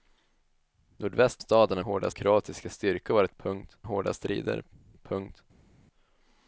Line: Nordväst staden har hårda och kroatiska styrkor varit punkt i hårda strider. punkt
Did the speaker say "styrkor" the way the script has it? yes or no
yes